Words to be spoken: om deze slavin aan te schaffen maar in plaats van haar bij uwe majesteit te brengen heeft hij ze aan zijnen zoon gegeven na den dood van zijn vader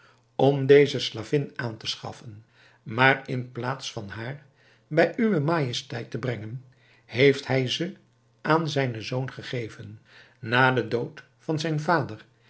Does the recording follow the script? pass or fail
pass